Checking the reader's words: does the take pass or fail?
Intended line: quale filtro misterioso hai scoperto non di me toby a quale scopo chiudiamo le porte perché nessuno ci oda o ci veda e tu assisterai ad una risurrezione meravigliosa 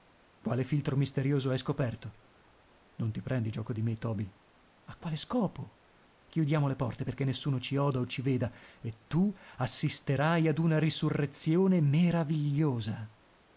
fail